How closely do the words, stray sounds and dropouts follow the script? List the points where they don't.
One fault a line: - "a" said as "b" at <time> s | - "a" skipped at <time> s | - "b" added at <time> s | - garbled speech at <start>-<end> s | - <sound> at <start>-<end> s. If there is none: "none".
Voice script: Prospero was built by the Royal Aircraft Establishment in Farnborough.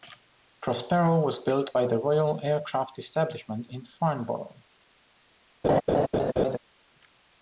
- laugh at 5.6-6.6 s